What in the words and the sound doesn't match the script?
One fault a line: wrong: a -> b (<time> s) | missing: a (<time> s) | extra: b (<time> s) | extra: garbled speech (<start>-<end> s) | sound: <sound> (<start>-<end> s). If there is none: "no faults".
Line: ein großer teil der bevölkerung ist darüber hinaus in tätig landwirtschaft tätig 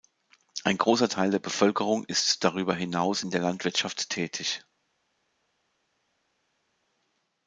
wrong: tätig -> der (3.3 s)